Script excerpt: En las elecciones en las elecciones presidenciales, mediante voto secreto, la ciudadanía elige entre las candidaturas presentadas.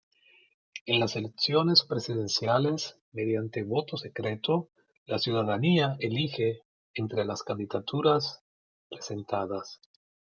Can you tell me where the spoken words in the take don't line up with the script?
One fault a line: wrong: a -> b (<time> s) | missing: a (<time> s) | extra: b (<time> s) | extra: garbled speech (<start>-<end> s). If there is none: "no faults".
missing: en las elecciones (1.8 s)